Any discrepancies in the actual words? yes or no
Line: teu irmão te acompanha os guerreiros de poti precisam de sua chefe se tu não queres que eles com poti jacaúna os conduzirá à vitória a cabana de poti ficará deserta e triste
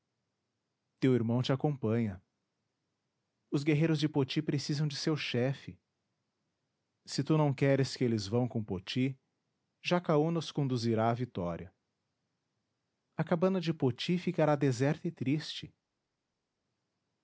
yes